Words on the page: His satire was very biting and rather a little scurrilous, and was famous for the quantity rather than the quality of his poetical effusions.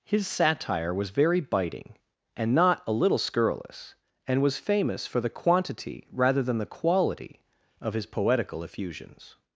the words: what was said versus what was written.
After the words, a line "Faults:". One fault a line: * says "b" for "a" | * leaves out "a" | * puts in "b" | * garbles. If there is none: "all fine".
His satire was very biting and not a little scurrilous, and was famous for the quantity rather than the quality of his poetical effusions.
Faults:
* says "not" for "rather"